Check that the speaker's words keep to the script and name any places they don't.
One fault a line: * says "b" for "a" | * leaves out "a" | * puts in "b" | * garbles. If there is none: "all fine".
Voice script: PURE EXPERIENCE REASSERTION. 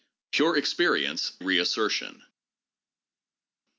all fine